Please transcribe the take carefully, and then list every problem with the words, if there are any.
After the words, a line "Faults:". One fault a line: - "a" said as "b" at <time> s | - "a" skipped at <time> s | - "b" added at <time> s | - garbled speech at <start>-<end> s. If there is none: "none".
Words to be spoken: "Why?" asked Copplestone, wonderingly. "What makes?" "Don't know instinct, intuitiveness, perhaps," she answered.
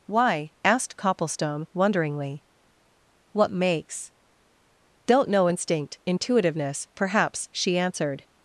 "Why?" asked Copplestone, wonderingly. "What makes?" "Don't know instinct, intuitiveness, perhaps," she answered.
Faults:
none